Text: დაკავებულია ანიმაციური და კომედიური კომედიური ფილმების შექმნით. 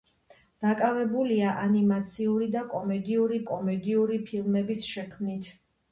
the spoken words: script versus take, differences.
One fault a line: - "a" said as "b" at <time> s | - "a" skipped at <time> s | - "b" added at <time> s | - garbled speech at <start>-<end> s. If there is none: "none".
none